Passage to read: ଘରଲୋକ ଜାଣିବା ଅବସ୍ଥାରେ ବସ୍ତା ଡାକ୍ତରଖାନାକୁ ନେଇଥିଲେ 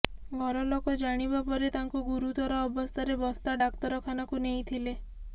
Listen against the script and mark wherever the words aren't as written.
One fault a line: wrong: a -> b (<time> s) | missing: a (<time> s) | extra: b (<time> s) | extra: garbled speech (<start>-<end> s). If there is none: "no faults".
extra: ପରେ ତାଙ୍କୁ ଗୁରୁତର (1.5 s)